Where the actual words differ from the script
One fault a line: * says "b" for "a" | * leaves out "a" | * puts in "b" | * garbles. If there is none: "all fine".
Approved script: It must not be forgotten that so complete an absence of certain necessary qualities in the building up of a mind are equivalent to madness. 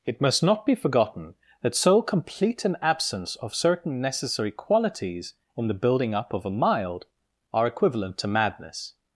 * says "mild" for "mind"